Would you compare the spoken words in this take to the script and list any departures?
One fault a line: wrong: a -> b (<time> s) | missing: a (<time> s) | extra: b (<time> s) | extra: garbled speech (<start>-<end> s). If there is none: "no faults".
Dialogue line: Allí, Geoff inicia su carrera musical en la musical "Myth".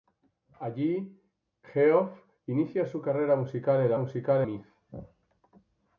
no faults